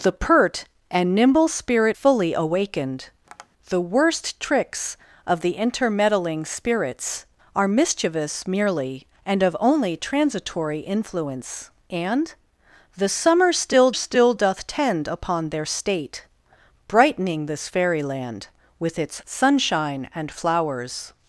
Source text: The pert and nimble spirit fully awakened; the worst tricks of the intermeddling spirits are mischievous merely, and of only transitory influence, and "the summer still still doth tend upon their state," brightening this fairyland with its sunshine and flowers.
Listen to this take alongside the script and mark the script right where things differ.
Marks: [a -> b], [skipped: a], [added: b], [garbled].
The pert and nimble spirit fully awakened; the worst tricks of the intermeddling spirits are mischievous merely, and of only transitory influence, and "the summer still still doth tend upon their state," brightening this fairyland with its sunshine and flowers.